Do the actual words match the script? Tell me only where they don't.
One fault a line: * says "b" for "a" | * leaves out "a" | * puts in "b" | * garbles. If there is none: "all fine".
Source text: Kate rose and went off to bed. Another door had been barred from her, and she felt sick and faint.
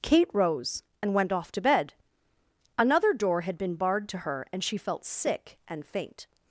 * says "to" for "from"